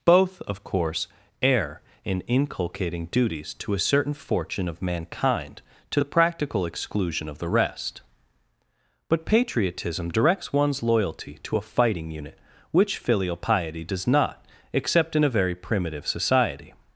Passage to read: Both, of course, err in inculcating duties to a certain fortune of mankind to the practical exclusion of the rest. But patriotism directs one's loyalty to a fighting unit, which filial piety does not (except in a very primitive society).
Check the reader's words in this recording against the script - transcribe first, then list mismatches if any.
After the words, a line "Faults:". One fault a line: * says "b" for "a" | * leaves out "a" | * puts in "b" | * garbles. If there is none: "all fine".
Both, of course, err in inculcating duties to a certain fortune of mankind to the practical exclusion of the rest. But patriotism directs one's loyalty to a fighting unit, which filial piety does not (except in a very primitive society).
Faults:
all fine